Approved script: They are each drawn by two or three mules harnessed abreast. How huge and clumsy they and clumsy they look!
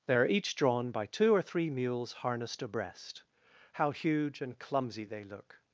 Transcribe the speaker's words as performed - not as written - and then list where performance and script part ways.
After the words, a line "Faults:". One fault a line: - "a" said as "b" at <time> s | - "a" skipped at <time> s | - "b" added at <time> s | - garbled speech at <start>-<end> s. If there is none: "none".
They are each drawn by two or three mules harnessed abreast. How huge and clumsy they look!
Faults:
- "and clumsy they" skipped at 5.2 s